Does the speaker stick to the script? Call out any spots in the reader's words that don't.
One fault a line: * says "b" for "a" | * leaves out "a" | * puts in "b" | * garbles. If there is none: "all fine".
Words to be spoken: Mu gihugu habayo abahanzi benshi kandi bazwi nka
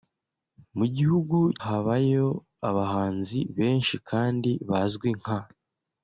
all fine